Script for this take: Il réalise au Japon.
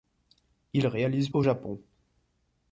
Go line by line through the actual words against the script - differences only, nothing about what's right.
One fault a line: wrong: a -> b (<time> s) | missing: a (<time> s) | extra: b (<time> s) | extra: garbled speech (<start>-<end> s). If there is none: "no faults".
no faults